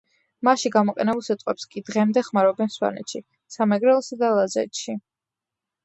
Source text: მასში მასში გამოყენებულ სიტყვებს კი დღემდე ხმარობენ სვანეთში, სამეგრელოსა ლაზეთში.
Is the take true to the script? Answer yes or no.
no